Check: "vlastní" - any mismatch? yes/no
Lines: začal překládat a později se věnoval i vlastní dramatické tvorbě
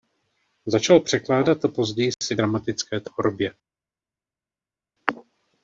yes